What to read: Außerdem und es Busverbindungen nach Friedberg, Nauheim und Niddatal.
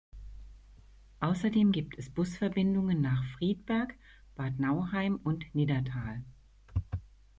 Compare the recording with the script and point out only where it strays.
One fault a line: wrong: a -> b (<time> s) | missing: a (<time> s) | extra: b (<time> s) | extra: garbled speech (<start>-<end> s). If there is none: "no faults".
wrong: und -> gibt (1.7 s)
extra: Bad (4.4 s)